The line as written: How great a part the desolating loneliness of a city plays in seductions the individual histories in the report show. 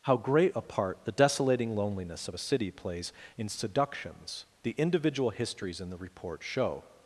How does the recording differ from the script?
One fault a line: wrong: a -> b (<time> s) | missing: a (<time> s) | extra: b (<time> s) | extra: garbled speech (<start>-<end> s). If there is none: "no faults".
no faults